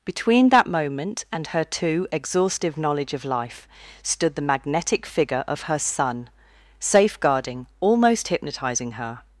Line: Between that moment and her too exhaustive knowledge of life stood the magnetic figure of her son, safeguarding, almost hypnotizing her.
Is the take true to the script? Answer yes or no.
yes